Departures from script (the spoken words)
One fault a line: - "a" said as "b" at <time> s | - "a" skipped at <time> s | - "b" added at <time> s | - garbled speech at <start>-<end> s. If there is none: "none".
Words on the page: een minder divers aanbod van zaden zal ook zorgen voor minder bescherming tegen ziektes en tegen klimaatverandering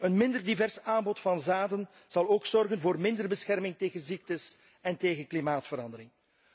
none